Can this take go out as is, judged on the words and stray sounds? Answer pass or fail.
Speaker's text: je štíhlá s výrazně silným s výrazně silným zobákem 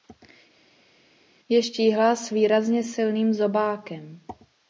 fail